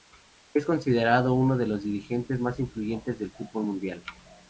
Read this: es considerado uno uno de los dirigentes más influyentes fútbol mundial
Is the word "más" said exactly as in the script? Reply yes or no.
yes